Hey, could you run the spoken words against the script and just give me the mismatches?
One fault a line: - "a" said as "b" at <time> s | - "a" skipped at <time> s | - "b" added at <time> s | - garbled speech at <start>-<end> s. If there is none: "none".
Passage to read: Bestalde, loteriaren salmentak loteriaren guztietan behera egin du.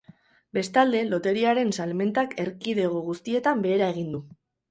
- "loteriaren" said as "erkidego" at 2.4 s